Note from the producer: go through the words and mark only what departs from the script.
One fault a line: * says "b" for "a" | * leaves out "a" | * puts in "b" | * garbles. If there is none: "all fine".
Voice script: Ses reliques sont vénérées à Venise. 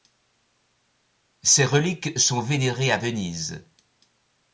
all fine